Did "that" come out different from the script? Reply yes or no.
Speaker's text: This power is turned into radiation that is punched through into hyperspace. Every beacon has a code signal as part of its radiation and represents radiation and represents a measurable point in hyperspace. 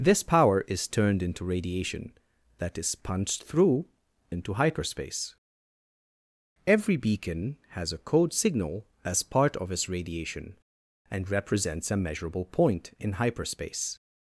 no